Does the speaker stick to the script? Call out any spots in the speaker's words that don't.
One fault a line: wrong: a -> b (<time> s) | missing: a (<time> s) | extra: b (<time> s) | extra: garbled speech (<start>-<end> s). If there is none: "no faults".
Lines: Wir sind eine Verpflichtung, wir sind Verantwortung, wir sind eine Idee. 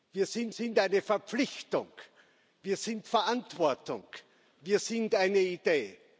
extra: sind (0.5 s)